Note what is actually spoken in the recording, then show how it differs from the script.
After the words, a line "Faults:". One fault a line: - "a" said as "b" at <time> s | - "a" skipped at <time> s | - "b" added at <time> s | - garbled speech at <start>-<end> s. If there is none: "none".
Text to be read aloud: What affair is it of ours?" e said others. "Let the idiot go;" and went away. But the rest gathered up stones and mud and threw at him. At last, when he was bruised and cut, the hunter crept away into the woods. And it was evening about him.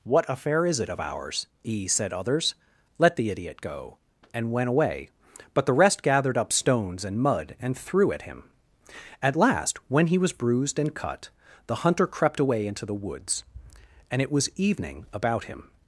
What affair is it of ours?" e said others. "Let the idiot go;" and went away. But the rest gathered up stones and mud and threw at him. At last, when he was bruised and cut, the hunter crept away into the woods. And it was evening about him.
Faults:
none